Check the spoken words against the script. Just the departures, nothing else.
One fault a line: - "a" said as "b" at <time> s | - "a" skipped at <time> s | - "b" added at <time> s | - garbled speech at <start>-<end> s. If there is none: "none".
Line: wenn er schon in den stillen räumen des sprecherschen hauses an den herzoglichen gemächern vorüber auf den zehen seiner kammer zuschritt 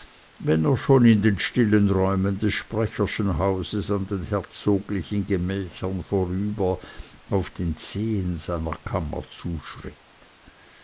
none